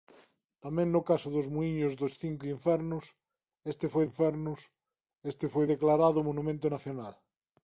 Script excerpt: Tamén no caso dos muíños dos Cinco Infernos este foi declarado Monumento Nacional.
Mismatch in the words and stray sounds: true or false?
true